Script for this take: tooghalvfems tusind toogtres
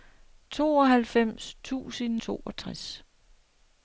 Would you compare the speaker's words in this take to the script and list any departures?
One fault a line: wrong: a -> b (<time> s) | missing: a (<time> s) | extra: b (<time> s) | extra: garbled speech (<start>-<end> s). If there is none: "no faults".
no faults